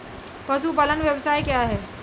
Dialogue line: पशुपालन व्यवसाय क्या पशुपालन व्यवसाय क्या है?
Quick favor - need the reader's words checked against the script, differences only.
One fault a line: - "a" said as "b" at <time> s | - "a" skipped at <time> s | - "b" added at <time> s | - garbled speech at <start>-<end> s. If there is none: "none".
- "पशुपालन व्यवसाय क्या" skipped at 1.6 s